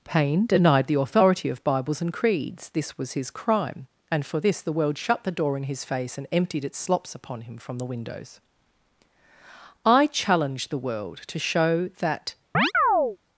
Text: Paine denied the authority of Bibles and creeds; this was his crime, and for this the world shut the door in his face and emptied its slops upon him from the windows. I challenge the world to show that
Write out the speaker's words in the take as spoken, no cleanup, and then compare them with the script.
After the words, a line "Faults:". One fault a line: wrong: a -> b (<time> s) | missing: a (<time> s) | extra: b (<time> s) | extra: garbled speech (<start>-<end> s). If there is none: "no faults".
Paine denied the authority of Bibles and creeds; this was his crime, and for this the world shut the door in his face and emptied its slops upon him from the windows. I challenge the world to show that
Faults:
no faults